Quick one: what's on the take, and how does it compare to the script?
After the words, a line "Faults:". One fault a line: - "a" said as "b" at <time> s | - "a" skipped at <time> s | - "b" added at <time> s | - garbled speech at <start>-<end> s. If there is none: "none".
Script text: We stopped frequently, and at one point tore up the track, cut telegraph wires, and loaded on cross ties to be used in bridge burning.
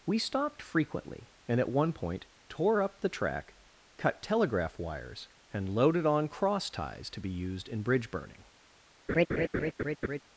We stopped frequently, and at one point tore up the track, cut telegraph wires, and loaded on cross ties to be used in bridge burning.
Faults:
none